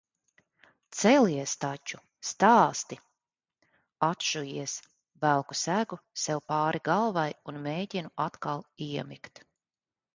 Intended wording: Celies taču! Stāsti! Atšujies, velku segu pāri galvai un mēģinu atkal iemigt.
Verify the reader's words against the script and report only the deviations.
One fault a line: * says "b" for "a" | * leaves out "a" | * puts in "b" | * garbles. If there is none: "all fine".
* puts in "sev"